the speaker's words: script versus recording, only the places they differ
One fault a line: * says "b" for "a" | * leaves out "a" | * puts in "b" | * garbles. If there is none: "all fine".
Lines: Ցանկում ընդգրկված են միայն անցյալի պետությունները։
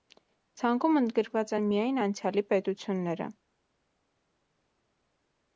all fine